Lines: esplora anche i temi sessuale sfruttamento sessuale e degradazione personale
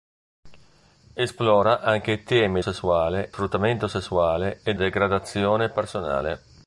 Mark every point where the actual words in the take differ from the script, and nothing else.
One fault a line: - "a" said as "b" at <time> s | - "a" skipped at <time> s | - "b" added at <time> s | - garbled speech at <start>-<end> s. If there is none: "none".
none